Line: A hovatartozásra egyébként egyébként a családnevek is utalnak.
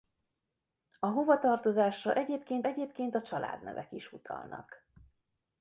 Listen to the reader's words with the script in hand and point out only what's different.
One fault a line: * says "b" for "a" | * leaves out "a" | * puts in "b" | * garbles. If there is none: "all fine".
all fine